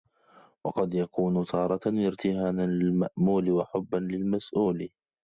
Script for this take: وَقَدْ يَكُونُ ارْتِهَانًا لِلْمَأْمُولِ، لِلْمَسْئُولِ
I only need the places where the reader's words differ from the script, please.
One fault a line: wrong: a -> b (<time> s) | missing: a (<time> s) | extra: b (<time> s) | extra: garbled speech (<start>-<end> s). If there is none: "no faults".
extra: تَارَةً (1.4 s)
extra: وَحُبًّا (3.5 s)